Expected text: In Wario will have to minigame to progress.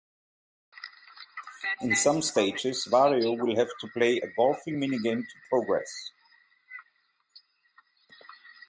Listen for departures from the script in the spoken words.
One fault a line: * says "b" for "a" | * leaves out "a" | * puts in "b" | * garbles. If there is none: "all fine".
* puts in "some stages"
* puts in "play a golfing"